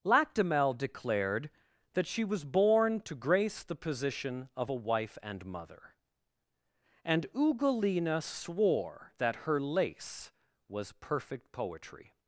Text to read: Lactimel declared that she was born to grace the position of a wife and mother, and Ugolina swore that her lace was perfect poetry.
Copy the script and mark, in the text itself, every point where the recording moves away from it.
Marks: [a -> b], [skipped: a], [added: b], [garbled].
Lactimel declared that she was born to grace the position of a wife and mother, and Ugolina swore that her lace was perfect poetry.